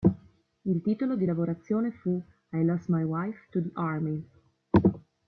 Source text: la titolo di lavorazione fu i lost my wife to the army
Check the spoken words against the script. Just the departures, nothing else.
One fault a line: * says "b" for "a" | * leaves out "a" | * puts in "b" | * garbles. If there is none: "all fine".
* says "il" for "la"